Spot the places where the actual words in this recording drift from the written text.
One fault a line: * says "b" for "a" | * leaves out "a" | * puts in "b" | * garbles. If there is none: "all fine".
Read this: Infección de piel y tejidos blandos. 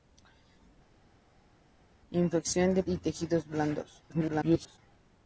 * leaves out "piel"
* garbles